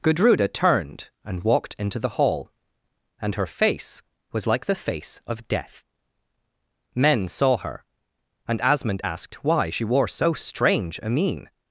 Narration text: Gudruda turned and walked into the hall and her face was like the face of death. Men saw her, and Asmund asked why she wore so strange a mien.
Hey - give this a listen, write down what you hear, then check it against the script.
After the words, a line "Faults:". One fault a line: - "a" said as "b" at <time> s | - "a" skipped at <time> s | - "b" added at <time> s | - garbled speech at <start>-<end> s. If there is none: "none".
Gudruda turned and walked into the hall and her face was like the face of death. Men saw her, and Asmund asked why she wore so strange a mien.
Faults:
none